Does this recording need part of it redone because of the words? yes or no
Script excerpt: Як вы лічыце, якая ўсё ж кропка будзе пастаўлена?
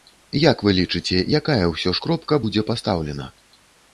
no